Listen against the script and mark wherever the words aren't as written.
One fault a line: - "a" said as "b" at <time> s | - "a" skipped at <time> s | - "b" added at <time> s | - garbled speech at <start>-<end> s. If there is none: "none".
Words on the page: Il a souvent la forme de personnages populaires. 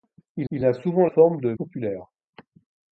- "il" added at 0.5 s
- "la" skipped at 1.1 s
- "personnages" skipped at 1.5 s